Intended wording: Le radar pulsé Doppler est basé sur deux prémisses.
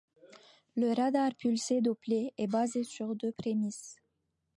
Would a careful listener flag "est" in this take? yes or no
no